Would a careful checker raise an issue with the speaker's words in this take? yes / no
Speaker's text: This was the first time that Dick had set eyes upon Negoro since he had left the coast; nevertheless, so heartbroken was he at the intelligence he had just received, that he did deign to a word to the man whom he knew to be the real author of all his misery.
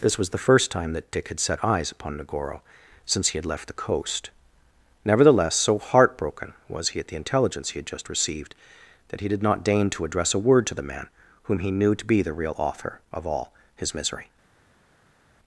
yes